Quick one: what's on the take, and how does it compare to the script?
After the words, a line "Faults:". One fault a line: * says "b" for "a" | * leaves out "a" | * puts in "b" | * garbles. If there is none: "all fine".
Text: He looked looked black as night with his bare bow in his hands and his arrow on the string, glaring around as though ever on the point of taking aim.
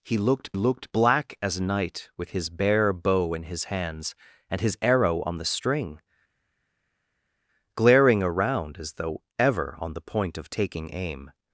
He looked looked black as night with his bare bow in his hands and his arrow on the string, glaring around as though ever on the point of taking aim.
Faults:
all fine